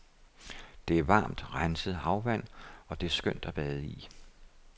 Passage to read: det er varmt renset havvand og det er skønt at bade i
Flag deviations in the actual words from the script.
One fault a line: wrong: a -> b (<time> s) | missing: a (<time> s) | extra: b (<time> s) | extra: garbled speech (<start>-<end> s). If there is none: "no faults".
no faults